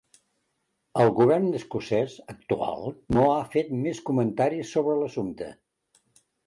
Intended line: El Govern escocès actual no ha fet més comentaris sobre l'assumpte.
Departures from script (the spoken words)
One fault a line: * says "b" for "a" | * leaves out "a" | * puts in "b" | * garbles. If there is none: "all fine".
all fine